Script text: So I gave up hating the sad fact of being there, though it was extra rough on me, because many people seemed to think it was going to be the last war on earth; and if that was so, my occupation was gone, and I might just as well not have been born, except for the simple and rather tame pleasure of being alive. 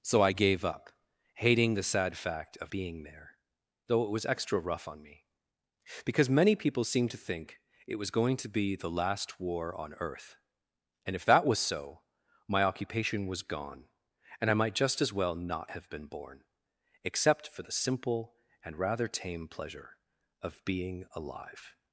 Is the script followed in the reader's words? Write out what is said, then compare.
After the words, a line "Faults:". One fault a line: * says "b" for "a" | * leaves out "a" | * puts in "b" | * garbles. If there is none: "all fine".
So I gave up hating the sad fact of being there, though it was extra rough on me, because many people seemed to think it was going to be the last war on earth; and if that was so, my occupation was gone, and I might just as well not have been born, except for the simple and rather tame pleasure of being alive.
Faults:
all fine